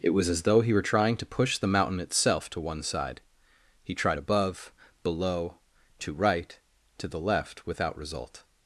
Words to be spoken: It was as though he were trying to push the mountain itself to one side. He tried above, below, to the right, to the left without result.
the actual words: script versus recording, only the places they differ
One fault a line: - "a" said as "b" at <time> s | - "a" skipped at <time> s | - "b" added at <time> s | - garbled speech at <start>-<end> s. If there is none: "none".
- "the" skipped at 6.1 s